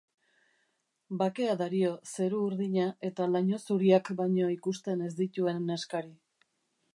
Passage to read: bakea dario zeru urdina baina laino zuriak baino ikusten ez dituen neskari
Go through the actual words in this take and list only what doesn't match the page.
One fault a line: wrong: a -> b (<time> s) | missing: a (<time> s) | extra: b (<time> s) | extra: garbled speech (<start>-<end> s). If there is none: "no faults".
wrong: baina -> eta (3.1 s)